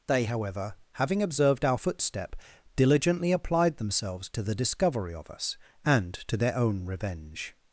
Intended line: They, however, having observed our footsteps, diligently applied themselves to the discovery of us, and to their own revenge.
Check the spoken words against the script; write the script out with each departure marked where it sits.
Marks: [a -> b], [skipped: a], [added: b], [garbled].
They, however, having observed our [footsteps, -> footstep] diligently applied themselves to the discovery of us, and to their own revenge.